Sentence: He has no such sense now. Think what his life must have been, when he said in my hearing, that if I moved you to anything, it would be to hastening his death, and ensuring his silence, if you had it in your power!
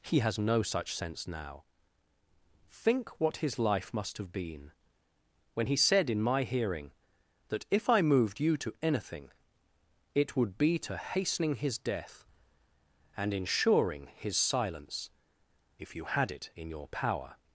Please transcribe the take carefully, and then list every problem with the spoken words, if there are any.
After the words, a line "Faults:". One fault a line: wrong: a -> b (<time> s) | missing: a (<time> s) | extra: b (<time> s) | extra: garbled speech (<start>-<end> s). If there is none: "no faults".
He has no such sense now. Think what his life must have been, when he said in my hearing, that if I moved you to anything, it would be to hastening his death, and ensuring his silence, if you had it in your power!
Faults:
no faults